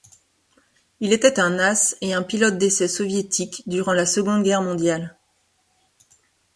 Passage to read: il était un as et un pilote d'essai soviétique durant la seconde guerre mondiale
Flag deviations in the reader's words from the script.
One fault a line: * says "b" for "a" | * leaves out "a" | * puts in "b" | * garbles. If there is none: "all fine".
all fine